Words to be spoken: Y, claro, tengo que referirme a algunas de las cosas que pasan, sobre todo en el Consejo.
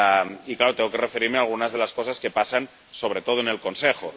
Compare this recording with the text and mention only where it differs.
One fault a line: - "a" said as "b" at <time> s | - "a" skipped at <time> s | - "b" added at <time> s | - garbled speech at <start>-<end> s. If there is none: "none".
none